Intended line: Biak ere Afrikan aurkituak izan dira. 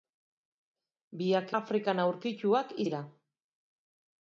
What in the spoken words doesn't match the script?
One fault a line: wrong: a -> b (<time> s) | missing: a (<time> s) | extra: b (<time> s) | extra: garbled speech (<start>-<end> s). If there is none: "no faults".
missing: ere (1.5 s)
missing: izan (2.7 s)